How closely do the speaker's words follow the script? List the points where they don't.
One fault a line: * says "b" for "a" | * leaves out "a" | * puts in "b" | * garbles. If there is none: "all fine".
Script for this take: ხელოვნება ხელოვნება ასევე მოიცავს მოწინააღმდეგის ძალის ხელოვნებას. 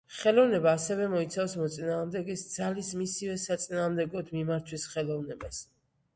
* leaves out "ხელოვნება"
* puts in "მისივე საწინააღმდეგოდ მიმართვის"